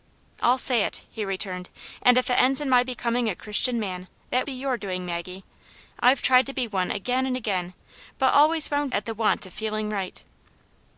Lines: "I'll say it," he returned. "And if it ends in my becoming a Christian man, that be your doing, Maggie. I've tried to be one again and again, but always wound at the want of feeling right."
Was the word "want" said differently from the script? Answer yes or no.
no